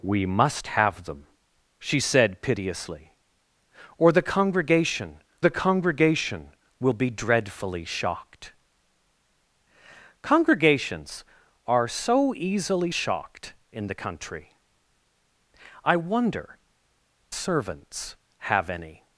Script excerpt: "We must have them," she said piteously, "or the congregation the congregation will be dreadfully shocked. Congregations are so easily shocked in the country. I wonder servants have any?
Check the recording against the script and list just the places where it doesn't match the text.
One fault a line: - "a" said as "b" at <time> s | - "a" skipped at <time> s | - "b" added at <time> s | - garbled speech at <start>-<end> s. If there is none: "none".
none